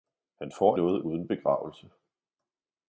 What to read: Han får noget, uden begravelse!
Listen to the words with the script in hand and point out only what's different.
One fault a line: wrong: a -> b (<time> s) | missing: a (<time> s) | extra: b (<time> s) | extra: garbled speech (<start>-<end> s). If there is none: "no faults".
no faults